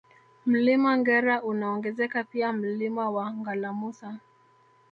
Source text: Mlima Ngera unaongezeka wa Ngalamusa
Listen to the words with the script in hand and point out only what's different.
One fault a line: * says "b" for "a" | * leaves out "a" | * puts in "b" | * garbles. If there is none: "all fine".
* puts in "pia Mlima"